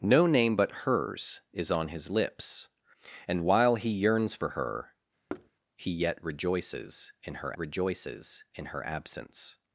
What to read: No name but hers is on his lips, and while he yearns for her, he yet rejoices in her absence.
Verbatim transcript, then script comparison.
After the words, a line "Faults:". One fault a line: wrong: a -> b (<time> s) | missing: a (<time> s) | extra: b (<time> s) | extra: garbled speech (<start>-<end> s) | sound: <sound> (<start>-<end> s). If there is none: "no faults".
No name but hers is on his lips, and while he yearns for her, he yet rejoices in her rejoices in her absence.
Faults:
sound: thud (5.3-5.5 s)
extra: rejoices in her (7.6 s)